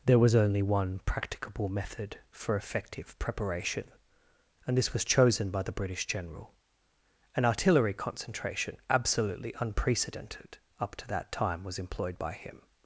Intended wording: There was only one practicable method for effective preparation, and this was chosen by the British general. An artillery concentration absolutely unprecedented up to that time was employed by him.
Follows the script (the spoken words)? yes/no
yes